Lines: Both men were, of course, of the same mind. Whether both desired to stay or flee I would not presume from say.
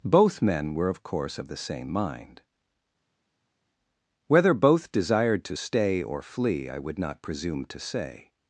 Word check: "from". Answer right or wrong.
wrong